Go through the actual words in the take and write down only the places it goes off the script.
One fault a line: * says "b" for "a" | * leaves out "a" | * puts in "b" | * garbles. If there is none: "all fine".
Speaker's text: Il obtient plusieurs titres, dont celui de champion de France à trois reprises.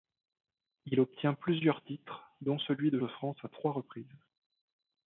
* leaves out "champion"